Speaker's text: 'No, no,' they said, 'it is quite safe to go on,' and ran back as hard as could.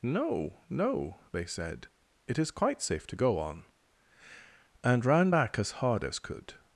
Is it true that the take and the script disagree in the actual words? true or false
false